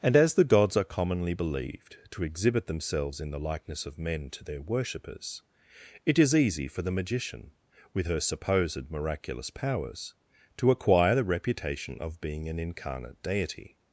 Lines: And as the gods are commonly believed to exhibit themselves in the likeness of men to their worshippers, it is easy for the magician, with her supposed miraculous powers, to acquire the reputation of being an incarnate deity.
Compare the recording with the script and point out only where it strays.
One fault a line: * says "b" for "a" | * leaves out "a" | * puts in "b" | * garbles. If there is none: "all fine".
all fine